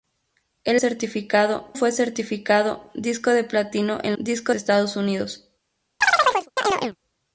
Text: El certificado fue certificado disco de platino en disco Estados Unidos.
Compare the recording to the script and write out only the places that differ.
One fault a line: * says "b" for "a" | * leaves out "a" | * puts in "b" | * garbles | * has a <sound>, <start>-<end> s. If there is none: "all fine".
* has a chirp, 6.0-7.0 s